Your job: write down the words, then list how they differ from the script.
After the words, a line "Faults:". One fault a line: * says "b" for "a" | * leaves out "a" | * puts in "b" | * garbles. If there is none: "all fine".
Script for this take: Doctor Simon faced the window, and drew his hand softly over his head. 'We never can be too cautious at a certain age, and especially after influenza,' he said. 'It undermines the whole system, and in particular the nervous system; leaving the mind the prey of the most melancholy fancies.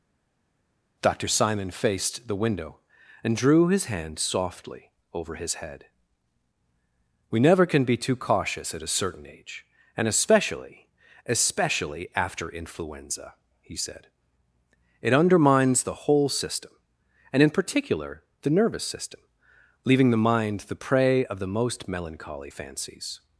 Doctor Simon faced the window, and drew his hand softly over his head. 'We never can be too cautious at a certain age, and especially especially after influenza,' he said. 'It undermines the whole system, and in particular the nervous system; leaving the mind the prey of the most melancholy fancies.
Faults:
* puts in "especially"